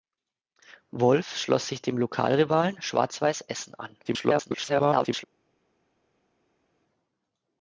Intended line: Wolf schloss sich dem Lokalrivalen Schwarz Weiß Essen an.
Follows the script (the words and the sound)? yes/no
no